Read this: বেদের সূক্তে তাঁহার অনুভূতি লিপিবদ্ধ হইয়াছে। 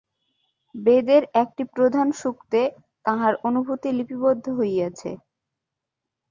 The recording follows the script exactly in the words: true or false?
false